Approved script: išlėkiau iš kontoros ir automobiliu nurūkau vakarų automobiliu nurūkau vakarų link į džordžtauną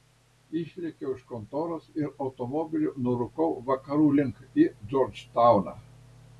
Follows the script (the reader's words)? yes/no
no